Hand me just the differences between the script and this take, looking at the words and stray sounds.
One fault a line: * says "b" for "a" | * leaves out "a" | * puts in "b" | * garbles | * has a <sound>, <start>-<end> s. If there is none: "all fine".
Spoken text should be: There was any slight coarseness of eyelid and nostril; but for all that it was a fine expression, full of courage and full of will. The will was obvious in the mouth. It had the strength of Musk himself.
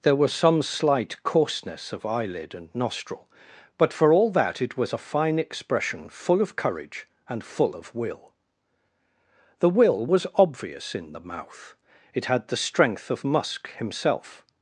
* says "some" for "any"